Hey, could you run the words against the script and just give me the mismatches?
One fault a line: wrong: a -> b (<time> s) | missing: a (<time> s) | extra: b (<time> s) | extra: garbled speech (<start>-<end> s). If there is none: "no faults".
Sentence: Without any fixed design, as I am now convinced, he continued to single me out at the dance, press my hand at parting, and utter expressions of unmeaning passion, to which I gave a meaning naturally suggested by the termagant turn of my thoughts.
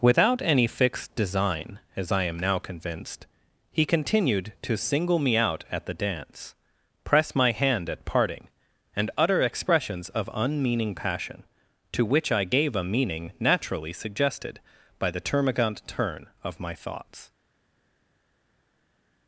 no faults